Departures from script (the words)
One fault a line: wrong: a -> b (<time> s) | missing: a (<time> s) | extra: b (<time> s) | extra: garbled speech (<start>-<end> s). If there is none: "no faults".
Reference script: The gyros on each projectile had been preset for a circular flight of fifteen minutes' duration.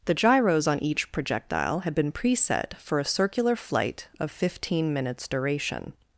no faults